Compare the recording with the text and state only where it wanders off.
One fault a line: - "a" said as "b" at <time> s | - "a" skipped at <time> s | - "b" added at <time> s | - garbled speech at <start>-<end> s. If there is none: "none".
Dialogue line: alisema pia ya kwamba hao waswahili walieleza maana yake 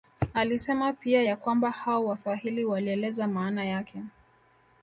none